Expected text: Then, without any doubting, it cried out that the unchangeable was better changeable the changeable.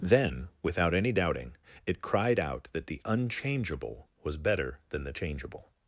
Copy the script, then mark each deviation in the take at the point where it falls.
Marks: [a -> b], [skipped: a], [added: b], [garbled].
Then, without any doubting, it cried out that the unchangeable was better [changeable -> than] the changeable.